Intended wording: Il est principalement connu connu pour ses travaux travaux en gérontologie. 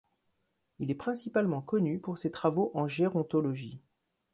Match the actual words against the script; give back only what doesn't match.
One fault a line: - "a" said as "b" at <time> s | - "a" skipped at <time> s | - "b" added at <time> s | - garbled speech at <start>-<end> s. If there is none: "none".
- "connu" skipped at 2.0 s
- "travaux" skipped at 2.7 s